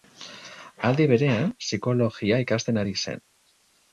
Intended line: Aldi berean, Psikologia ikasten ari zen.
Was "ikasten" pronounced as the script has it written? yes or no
yes